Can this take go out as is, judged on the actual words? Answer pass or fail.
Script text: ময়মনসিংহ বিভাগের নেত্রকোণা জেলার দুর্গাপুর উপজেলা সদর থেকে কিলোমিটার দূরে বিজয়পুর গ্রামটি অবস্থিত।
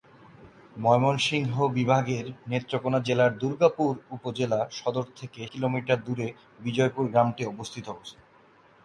pass